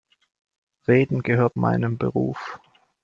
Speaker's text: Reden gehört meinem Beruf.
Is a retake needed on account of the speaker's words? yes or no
no